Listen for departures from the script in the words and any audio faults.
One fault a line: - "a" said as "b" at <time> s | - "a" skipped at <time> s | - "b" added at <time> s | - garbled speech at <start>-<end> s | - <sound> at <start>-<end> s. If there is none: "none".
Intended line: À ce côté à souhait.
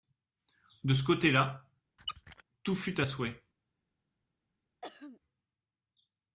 - "À" said as "De" at 0.8 s
- "là tout fut" added at 1.3 s
- squeak at 2.0-2.4 s
- throat clearing at 4.8-5.2 s